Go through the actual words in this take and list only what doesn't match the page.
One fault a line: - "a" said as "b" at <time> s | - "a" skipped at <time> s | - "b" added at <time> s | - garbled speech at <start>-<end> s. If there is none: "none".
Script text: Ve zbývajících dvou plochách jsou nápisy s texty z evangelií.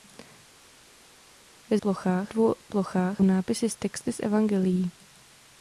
- "zbývajících" said as "plochách" at 1.8 s
- "jsou" skipped at 3.2 s